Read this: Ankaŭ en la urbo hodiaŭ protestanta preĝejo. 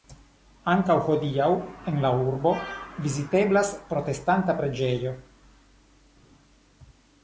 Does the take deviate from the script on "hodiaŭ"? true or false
true